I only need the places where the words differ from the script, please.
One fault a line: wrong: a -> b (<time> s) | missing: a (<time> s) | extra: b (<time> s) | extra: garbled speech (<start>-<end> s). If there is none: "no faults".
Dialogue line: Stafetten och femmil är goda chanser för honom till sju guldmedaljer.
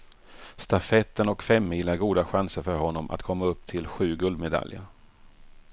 extra: att komma upp (3.1 s)